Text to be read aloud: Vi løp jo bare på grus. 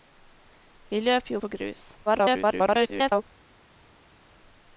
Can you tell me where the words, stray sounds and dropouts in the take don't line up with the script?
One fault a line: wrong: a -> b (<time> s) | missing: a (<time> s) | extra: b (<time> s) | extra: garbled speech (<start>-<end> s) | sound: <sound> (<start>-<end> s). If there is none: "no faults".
missing: bare (1.4 s)
extra: garbled speech (2.1-3.2 s)